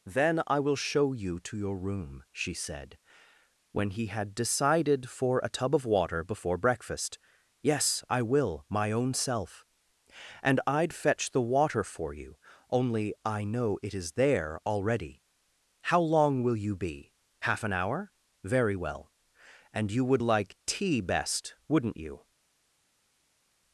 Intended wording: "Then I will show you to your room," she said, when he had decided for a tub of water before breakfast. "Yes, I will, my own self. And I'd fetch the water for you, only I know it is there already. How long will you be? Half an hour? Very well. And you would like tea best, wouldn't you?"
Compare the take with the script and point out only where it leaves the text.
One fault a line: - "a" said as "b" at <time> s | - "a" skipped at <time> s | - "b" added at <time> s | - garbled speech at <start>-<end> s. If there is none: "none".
none